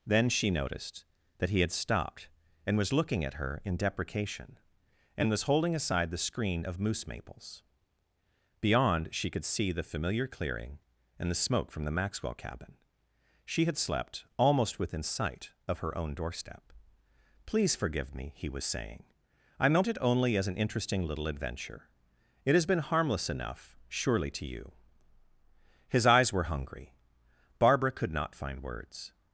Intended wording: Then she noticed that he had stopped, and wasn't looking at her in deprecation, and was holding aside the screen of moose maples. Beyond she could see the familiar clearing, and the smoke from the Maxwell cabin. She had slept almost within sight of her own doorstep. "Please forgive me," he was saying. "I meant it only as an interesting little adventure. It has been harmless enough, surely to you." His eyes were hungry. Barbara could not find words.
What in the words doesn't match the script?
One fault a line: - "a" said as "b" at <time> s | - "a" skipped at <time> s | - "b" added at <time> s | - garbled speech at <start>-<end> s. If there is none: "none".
- "wasn't" said as "was" at 2.8 s